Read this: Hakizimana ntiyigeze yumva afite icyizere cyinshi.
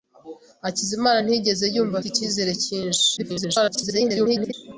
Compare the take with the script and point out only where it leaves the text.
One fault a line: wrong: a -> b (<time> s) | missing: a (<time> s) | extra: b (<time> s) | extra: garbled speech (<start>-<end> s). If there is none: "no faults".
missing: afite (2.0 s)
extra: garbled speech (3.2-4.5 s)